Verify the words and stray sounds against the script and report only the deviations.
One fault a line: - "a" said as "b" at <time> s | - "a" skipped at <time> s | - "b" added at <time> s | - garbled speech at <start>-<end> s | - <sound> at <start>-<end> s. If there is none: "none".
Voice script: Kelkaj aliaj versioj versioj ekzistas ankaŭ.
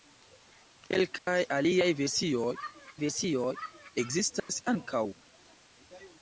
- dropout at 1.2-1.3 s
- dropout at 4.4-4.5 s